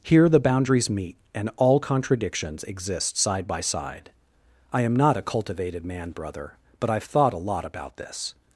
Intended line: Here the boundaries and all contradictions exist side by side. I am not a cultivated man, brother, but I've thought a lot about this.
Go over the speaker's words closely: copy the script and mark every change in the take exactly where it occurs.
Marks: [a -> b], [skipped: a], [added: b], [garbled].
Here the boundaries [added: meet] and all contradictions exist side by side. I am not a cultivated man, brother, but I've thought a lot about this.